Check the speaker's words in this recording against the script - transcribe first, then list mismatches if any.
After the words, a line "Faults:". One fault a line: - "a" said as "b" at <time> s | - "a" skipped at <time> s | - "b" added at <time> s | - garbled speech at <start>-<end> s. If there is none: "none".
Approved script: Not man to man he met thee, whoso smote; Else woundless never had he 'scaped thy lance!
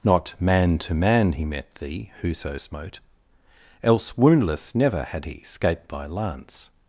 Not man to man he met thee, whoso smote; Else woundless never had he 'scaped thy lance!
Faults:
none